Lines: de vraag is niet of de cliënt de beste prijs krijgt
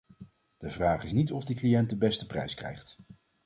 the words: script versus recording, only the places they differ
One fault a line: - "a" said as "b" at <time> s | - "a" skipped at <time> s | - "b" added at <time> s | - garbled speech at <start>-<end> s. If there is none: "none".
none